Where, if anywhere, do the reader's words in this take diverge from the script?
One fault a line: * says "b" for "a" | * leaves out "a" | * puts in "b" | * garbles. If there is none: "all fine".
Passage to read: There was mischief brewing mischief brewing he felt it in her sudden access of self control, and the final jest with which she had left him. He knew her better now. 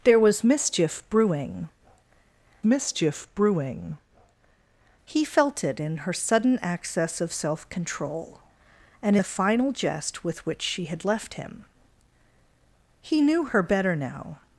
all fine